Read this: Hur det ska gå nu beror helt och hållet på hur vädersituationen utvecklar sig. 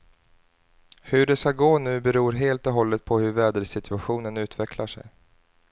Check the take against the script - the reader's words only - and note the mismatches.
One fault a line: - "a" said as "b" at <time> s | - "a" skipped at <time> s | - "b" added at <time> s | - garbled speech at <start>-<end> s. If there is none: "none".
none